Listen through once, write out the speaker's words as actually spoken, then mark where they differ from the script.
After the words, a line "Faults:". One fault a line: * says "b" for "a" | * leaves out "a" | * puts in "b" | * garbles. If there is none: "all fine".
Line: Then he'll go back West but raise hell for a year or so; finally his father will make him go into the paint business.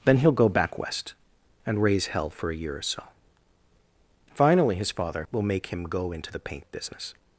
Then he'll go back West and raise hell for a year or so; finally his father will make him go into the paint business.
Faults:
* says "and" for "but"